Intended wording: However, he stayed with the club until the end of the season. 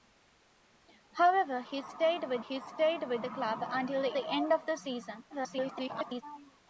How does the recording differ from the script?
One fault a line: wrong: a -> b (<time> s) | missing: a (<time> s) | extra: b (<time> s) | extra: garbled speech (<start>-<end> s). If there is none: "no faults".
extra: he stayed with (2.4 s)
extra: the (4.1 s)
extra: garbled speech (5.3-6.2 s)